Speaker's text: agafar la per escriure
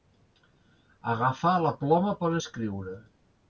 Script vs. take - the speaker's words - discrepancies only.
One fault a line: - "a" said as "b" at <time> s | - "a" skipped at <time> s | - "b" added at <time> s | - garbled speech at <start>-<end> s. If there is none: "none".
- "ploma" added at 1.9 s